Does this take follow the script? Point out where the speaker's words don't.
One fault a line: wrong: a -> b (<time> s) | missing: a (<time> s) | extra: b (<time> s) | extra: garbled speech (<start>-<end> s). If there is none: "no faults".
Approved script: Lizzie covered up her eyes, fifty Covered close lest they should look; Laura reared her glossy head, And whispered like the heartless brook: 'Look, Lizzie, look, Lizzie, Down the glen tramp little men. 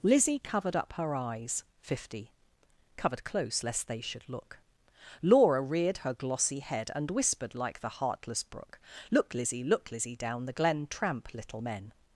no faults